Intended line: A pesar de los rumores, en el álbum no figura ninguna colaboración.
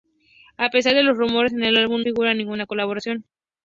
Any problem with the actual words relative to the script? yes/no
yes